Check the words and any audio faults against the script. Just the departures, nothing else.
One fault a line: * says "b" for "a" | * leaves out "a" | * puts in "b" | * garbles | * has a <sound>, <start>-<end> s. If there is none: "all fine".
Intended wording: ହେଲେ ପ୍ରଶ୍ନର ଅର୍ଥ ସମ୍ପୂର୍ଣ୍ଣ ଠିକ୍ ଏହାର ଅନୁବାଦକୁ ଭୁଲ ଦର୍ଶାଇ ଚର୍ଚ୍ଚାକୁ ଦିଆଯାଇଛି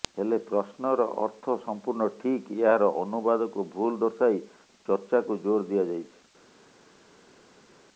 * puts in "ଜୋର"